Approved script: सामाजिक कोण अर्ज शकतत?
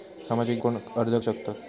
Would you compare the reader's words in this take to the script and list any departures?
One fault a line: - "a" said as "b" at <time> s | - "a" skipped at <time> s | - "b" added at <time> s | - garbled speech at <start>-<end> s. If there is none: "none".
none